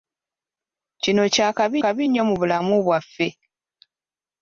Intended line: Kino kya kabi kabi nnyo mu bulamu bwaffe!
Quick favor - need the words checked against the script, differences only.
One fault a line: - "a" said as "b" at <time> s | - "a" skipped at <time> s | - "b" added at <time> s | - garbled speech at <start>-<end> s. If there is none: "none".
none